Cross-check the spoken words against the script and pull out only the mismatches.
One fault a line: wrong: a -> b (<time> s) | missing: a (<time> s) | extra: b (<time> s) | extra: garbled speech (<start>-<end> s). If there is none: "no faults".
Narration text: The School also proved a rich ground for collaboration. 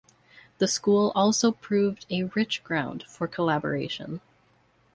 no faults